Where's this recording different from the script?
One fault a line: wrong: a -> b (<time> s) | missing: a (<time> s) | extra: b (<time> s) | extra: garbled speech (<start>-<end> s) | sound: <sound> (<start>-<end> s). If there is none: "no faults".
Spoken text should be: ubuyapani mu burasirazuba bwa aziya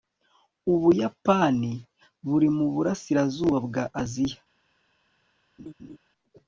extra: buri (2.3 s)
sound: laugh (5.6-6.0 s)